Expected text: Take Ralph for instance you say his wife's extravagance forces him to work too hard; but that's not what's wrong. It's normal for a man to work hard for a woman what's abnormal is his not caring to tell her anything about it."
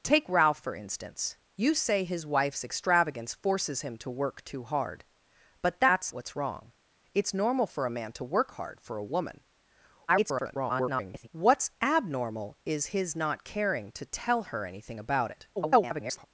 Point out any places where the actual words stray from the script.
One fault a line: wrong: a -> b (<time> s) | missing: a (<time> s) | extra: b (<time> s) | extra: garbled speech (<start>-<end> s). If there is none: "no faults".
missing: not (6.1 s)
extra: garbled speech (10.1-11.3 s)
extra: garbled speech (15.6-16.3 s)